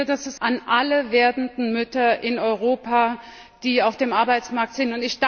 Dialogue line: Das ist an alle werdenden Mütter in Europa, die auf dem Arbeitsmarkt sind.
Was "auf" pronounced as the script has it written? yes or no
yes